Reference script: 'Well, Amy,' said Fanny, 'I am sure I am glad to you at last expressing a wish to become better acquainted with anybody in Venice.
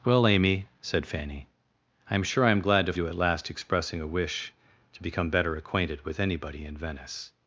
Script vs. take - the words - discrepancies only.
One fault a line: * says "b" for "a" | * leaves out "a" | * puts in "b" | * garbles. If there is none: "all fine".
all fine